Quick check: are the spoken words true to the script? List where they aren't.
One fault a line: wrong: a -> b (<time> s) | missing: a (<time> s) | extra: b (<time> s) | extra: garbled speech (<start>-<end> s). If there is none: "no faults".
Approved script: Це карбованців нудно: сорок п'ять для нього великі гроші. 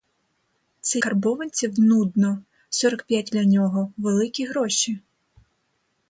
no faults